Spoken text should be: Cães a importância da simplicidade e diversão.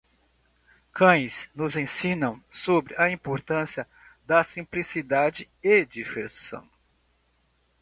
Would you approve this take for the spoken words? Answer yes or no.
no